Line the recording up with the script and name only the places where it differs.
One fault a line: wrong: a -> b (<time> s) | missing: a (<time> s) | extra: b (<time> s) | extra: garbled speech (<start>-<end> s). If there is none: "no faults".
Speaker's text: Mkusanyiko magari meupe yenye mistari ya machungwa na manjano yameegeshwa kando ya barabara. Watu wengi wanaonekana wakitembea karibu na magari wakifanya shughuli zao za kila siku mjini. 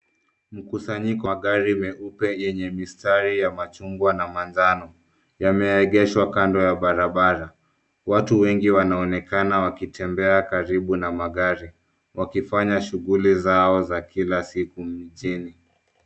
no faults